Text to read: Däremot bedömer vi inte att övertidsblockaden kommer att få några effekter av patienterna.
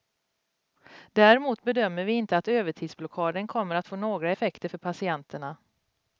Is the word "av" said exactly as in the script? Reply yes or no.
no